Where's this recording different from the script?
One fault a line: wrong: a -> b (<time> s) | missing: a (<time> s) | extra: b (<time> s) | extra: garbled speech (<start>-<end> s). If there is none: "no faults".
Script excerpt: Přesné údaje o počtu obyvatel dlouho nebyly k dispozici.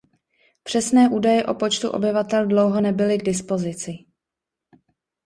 no faults